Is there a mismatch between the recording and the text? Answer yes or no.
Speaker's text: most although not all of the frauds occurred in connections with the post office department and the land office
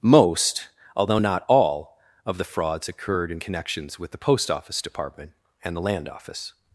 no